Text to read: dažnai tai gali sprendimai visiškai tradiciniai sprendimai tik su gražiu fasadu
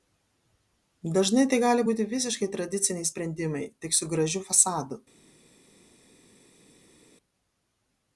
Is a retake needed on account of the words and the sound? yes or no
yes